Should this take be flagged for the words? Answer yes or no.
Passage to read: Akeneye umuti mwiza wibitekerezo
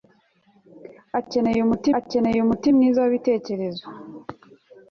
yes